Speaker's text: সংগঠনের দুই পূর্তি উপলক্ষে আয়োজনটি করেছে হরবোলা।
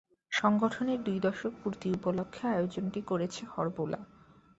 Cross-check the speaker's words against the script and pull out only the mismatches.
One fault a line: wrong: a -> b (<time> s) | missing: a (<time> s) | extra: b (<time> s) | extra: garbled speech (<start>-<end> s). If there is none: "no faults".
extra: দশক (1.2 s)